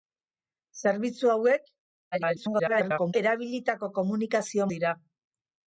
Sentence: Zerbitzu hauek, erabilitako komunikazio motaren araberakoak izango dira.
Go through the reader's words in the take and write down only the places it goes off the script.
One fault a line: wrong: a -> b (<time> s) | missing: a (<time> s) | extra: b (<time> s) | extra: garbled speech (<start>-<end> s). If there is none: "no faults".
extra: garbled speech (2.1-3.1 s)
missing: motaren araberakoak izango (4.7 s)